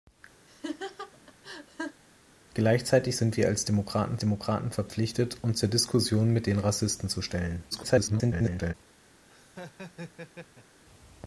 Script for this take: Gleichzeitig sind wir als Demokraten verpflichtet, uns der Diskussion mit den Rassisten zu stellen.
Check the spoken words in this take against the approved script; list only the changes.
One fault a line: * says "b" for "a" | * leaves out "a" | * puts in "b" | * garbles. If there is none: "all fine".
* puts in "Demokraten"
* garbles